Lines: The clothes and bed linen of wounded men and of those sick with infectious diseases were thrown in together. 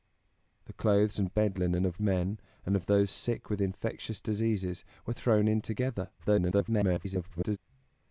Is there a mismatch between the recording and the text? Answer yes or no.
yes